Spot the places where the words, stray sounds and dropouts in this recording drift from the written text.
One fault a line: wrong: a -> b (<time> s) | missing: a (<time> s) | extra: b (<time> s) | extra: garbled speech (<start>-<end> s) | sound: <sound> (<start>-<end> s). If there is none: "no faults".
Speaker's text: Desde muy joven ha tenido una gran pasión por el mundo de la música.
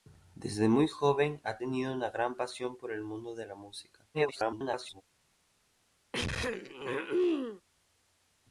extra: garbled speech (4.1-5.0 s)
sound: throat clearing (6.1-7.6 s)